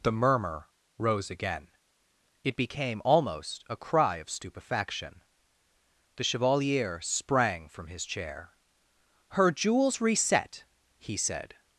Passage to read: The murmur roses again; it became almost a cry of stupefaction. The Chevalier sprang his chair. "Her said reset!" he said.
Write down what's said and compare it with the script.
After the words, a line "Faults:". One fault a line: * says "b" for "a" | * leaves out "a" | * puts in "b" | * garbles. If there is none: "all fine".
The murmur rose again; it became almost a cry of stupefaction. The Chevalier sprang from his chair. "Her jewels reset!" he said.
Faults:
* says "rose" for "roses"
* puts in "from"
* says "jewels" for "said"